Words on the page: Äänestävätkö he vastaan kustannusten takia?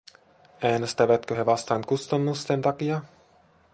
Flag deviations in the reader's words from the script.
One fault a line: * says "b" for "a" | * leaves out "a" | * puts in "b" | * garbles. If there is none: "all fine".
all fine